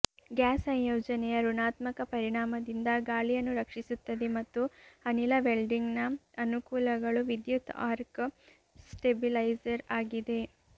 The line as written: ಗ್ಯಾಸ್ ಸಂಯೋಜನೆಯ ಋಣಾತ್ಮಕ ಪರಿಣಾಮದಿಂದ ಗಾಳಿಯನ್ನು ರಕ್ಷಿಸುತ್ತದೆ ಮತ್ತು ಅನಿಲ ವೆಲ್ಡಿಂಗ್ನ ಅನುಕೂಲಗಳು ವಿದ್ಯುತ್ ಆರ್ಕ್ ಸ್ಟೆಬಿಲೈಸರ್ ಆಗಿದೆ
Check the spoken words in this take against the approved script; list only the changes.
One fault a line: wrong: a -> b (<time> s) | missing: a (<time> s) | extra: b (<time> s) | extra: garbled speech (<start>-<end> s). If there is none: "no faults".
no faults